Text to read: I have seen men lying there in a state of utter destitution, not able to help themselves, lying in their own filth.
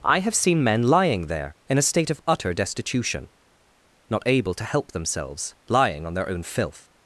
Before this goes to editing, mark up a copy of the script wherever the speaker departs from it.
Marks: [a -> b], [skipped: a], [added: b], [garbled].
I have seen men lying there in a state of utter destitution, not able to help themselves, lying [in -> on] their own filth.